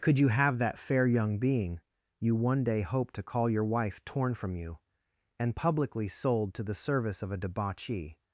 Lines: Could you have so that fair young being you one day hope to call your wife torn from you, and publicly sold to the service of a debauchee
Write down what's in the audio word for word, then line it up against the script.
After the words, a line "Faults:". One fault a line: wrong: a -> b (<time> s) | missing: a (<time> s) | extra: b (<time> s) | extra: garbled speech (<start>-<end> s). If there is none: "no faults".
Could you have that fair young being you one day hope to call your wife torn from you, and publicly sold to the service of a debauchee
Faults:
missing: so (0.6 s)